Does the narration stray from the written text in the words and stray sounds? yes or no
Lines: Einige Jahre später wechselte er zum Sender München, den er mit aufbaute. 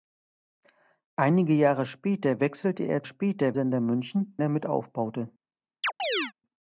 yes